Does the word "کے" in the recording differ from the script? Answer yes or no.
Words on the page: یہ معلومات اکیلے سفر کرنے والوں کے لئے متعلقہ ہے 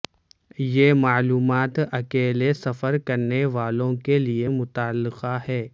no